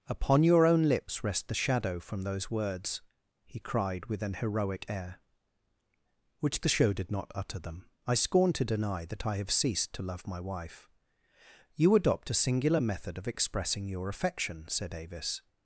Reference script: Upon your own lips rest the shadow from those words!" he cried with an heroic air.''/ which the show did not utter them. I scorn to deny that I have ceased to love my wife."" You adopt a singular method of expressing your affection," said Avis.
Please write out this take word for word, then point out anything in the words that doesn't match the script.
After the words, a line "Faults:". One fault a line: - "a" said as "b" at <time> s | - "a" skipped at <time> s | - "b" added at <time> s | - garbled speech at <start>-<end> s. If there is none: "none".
Upon your own lips rest the shadow from those words!" he cried with an heroic air.''/ which the show did not utter them. I scorn to deny that I have ceased to love my wife."" You adopt a singular method of expressing your affection," said Avis.
Faults:
none